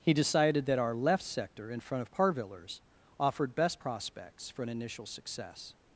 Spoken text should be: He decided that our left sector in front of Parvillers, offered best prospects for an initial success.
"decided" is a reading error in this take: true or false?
false